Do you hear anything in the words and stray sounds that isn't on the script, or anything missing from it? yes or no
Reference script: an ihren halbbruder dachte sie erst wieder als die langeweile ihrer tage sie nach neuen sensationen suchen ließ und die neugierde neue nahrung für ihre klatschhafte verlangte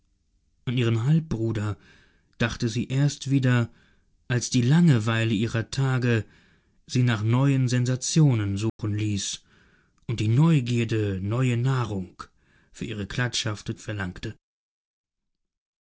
yes